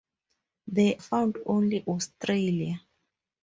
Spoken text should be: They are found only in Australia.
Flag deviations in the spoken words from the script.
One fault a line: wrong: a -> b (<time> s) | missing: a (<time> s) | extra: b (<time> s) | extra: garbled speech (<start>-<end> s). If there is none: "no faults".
missing: are (1.0 s)
missing: in (1.8 s)